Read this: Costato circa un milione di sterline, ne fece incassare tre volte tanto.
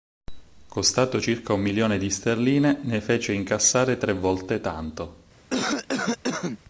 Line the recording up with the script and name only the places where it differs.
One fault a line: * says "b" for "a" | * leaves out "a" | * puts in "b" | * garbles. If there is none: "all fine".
all fine